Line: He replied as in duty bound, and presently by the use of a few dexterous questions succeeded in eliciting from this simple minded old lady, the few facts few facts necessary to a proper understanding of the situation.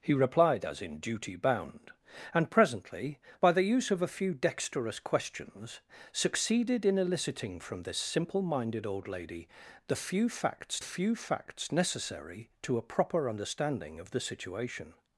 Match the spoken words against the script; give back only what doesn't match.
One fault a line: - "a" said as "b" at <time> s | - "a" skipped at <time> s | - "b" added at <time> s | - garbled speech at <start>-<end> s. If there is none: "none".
none